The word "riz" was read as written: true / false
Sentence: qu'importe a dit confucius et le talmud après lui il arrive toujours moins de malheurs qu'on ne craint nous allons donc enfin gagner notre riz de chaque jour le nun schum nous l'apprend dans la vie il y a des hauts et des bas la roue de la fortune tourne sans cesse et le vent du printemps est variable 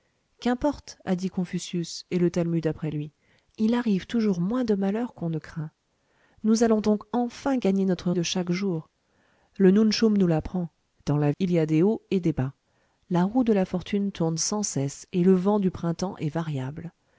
false